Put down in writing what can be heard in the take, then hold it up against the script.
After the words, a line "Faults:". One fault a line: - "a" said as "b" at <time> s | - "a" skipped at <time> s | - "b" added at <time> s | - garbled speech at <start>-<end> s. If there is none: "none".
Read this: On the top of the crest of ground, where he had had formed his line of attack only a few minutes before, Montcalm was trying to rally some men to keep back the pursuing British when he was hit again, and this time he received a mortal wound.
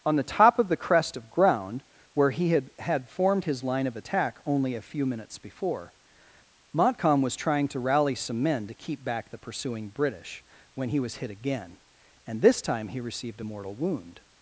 On the top of the crest of ground, where he had had formed his line of attack only a few minutes before, Montcalm was trying to rally some men to keep back the pursuing British when he was hit again, and this time he received a mortal wound.
Faults:
none